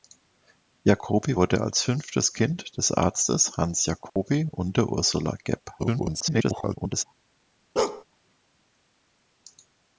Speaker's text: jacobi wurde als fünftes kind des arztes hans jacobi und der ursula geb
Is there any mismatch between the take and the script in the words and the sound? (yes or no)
yes